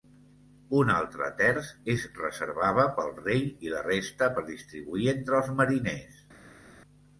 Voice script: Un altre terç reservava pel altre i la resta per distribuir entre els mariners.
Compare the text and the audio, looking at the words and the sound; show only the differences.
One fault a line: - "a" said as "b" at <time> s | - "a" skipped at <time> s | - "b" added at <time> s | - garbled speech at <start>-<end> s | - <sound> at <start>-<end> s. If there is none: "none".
- "es" added at 1.9 s
- "altre" said as "rei" at 3.2 s